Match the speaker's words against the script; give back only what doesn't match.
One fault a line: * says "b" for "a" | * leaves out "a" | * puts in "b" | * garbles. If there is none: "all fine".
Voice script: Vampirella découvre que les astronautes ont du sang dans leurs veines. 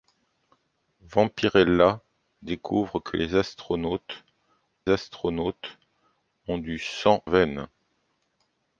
* puts in "astronautes"
* leaves out "dans leurs"